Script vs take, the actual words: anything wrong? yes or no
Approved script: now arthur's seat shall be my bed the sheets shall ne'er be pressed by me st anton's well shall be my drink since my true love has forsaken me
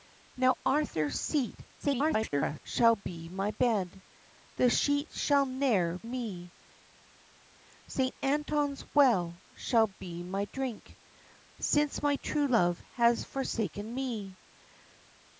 yes